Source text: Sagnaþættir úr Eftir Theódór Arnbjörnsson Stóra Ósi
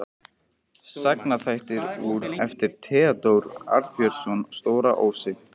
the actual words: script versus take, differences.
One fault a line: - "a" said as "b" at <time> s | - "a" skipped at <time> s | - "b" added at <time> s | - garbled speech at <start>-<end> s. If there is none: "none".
none